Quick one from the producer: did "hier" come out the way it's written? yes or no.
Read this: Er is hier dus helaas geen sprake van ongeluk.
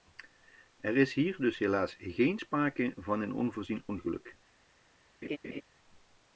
yes